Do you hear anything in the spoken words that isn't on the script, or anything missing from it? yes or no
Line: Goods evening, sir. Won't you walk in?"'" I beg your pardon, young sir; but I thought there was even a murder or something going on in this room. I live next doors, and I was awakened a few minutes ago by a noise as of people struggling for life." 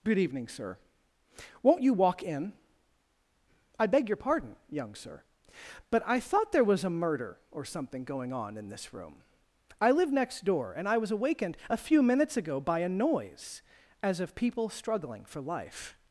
yes